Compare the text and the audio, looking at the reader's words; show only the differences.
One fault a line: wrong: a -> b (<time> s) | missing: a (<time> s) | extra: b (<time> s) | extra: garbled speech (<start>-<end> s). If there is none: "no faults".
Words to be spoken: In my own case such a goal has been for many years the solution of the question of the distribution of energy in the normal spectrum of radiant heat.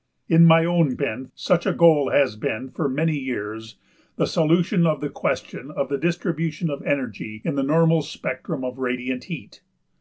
wrong: case -> been (0.9 s)